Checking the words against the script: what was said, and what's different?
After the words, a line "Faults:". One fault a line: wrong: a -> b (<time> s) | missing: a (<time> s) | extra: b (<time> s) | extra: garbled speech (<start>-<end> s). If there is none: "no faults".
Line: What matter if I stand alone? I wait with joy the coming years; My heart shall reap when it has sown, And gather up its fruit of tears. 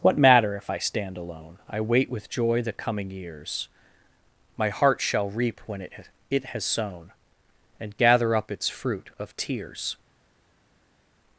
What matter if I stand alone? I wait with joy the coming years; My heart shall reap when it it has sown, And gather up its fruit of tears.
Faults:
extra: it (6.3 s)